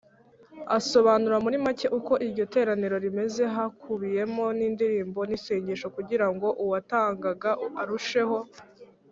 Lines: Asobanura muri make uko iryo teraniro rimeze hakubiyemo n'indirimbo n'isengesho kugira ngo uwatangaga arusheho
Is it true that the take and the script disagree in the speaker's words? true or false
false